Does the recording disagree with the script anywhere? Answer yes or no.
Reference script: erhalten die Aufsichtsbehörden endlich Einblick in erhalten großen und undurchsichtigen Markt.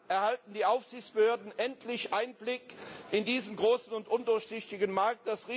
yes